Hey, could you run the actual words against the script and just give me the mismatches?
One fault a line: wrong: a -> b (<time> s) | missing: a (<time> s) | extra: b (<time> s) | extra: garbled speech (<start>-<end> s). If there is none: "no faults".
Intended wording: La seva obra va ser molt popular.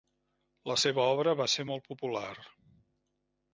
no faults